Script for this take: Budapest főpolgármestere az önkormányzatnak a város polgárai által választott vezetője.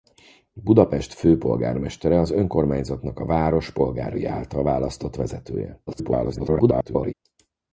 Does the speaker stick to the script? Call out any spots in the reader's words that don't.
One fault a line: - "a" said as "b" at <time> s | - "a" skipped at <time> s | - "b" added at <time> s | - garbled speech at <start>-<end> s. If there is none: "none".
- garbled speech at 5.9-7.1 s